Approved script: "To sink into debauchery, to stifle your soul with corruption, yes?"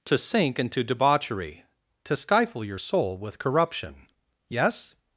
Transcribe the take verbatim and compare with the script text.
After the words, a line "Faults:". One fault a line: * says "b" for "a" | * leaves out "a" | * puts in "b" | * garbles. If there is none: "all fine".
"To sink into debauchery, to stifle your soul with corruption, yes?"
Faults:
all fine